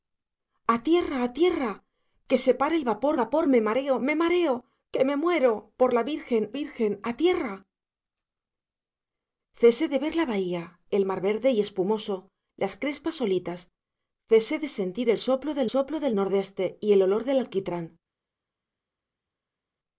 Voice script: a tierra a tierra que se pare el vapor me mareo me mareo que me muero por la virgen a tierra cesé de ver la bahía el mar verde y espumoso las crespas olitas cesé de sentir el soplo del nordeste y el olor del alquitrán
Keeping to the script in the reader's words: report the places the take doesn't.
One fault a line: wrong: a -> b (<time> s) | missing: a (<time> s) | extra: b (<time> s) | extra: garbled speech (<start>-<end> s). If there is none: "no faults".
extra: vapor (3.2 s)
extra: virgen (6.6 s)
extra: soplo del (15.7 s)